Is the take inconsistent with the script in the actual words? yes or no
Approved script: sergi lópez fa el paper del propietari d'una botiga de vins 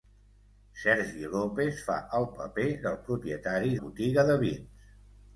yes